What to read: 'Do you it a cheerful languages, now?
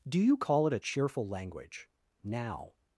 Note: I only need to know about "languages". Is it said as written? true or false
false